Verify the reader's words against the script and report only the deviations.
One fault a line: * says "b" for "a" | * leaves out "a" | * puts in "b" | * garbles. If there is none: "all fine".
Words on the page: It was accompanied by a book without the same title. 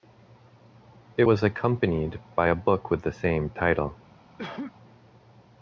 * says "with" for "without"